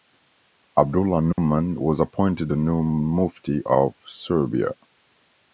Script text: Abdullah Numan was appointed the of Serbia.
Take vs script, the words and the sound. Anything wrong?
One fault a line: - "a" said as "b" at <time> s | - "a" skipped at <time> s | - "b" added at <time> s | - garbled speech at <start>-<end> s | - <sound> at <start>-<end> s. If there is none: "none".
- dropout at 1.3-1.4 s
- "new Mufti" added at 2.5 s